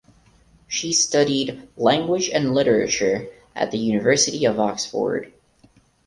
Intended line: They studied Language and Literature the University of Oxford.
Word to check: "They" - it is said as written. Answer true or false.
false